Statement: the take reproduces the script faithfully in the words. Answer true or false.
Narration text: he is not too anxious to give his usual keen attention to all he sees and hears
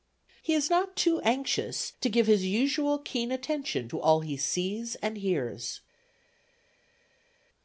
true